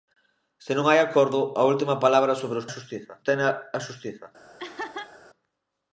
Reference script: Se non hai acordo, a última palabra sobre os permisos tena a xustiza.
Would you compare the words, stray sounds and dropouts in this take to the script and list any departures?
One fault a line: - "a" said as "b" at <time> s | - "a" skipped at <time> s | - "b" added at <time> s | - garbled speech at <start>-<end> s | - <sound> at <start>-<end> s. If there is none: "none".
- "permisos" said as "xustiza" at 2.7 s
- laugh at 4.6-5.2 s